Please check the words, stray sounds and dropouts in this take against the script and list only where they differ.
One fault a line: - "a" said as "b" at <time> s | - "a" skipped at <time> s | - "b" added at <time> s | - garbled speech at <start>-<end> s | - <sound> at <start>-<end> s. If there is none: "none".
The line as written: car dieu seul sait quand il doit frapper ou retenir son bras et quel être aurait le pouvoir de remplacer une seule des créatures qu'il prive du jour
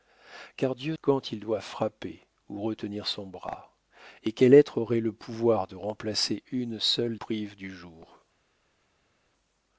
- "seul sait" skipped at 1.0 s
- "des créatures qu'il" skipped at 7.2 s